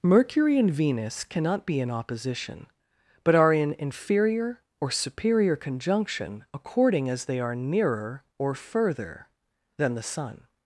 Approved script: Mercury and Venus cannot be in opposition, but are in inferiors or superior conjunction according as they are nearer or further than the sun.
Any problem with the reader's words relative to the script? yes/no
yes